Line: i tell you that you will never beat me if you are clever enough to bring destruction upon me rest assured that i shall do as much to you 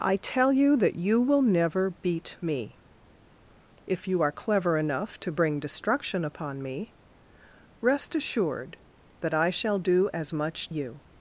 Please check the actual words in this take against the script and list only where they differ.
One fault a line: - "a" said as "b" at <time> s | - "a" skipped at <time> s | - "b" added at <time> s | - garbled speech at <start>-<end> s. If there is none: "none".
- "to" skipped at 10.7 s